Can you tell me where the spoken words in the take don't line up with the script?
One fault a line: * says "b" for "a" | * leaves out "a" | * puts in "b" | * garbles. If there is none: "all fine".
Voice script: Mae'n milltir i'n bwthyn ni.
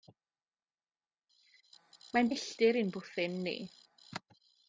all fine